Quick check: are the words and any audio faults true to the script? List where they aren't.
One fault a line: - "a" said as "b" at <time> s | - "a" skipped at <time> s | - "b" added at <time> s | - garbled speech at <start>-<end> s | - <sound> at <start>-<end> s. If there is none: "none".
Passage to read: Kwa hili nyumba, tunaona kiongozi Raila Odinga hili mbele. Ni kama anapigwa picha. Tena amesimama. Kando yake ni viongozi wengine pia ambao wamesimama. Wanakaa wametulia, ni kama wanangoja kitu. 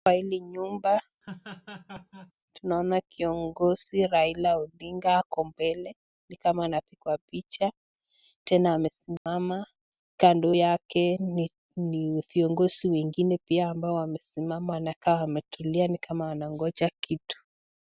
- laugh at 1.2-2.3 s
- "hili" said as "ako" at 5.2 s
- dropout at 9.2-9.3 s